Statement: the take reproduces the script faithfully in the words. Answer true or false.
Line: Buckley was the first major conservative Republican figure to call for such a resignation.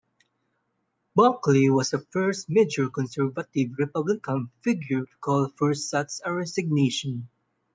true